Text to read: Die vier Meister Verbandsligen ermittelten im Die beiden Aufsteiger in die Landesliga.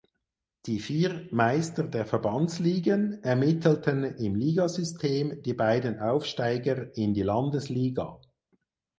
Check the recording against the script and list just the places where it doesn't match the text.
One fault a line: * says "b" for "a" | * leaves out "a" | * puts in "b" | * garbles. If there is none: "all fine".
* puts in "der"
* puts in "Ligasystem"